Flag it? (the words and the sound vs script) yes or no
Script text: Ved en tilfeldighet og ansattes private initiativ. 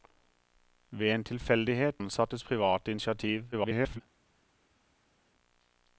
yes